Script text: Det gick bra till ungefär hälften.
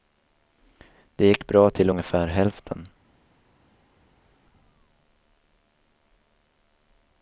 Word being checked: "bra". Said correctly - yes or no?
yes